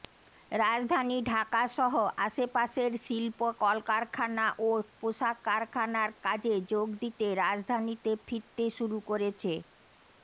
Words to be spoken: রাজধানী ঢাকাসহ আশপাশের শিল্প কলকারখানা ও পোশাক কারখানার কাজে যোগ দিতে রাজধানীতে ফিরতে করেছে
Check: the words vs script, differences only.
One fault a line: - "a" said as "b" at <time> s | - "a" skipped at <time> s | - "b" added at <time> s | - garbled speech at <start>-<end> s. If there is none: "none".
- "শুরু" added at 8.8 s